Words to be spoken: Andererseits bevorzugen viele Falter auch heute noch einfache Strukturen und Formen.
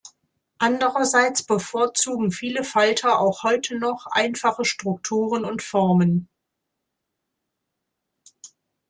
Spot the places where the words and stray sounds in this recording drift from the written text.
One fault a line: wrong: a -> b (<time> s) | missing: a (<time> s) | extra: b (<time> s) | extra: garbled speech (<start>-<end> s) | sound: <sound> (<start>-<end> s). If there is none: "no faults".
no faults